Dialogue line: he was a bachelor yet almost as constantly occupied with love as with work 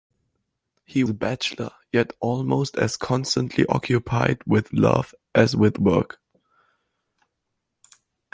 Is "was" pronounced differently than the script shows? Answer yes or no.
yes